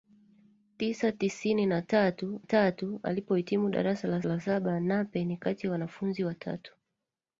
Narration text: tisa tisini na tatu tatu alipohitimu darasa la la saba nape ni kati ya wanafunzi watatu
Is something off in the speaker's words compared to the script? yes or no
no